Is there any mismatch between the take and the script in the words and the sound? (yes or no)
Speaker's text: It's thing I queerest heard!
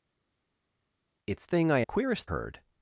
no